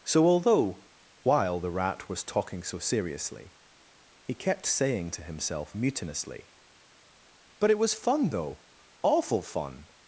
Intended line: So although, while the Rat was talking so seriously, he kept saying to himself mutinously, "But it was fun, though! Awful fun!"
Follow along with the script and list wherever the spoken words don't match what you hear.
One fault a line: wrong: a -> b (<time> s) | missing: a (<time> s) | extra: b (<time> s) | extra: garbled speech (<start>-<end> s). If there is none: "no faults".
no faults